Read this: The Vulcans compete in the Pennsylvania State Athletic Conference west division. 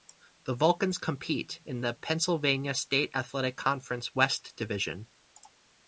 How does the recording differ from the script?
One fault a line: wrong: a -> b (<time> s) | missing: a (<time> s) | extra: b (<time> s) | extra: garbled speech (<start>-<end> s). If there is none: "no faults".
no faults